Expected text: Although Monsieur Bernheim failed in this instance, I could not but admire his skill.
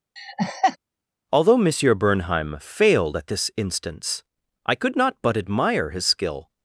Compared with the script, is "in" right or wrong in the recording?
wrong